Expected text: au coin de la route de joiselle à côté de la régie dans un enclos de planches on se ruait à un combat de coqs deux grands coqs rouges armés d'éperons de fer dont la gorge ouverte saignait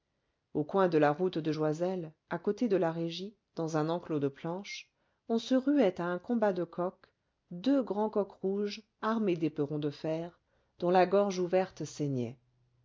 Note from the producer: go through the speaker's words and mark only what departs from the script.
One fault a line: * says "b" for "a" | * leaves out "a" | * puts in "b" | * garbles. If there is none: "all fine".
all fine